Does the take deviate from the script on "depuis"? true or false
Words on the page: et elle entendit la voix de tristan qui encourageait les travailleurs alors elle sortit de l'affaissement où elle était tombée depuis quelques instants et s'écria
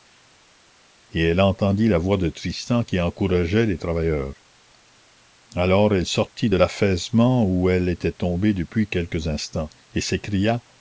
false